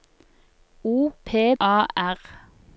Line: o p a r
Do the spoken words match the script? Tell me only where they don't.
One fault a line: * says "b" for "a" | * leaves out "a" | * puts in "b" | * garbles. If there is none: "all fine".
all fine